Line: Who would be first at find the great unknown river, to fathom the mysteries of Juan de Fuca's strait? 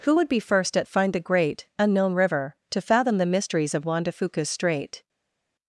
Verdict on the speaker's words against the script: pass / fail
pass